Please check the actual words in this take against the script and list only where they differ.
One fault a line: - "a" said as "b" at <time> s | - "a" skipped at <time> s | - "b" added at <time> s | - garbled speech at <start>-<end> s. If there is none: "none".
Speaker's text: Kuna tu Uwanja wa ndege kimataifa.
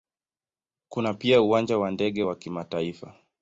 - "tu" said as "pia" at 1.1 s
- "wa" added at 2.2 s